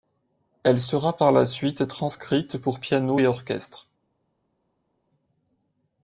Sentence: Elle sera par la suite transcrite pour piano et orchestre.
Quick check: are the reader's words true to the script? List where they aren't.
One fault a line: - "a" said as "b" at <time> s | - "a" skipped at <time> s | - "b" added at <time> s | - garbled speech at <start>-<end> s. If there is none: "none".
none